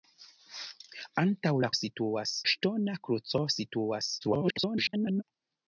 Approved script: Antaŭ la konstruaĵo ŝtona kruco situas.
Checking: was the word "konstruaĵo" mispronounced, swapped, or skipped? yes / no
yes